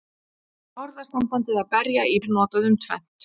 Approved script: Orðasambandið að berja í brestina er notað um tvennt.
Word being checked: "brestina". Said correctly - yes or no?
no